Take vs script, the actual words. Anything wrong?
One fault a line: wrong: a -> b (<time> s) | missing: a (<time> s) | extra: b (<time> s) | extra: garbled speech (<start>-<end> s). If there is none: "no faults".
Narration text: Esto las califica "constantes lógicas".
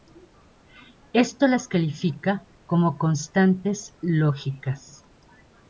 extra: como (2.6 s)